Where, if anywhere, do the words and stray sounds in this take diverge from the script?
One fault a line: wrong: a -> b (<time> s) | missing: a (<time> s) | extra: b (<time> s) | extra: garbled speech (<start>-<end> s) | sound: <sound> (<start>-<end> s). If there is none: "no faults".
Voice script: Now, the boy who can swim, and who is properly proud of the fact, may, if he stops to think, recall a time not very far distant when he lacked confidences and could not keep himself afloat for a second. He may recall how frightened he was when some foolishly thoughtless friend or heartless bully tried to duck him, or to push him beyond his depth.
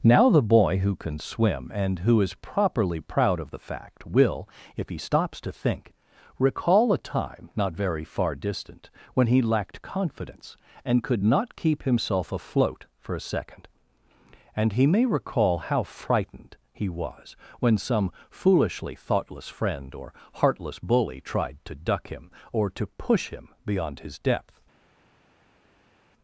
wrong: may -> will (4.1 s)
wrong: confidences -> confidence (9.8 s)
extra: And (14.5 s)